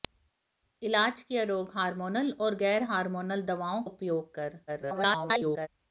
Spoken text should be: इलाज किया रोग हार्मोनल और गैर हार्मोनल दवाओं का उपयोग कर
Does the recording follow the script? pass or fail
fail